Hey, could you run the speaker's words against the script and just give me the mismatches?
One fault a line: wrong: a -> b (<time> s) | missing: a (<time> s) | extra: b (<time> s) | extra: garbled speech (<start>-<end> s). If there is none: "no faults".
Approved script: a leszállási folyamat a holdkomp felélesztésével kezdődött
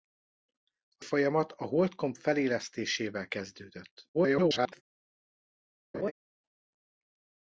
missing: leszállási (1.1 s)
extra: garbled speech (4.1-4.8 s)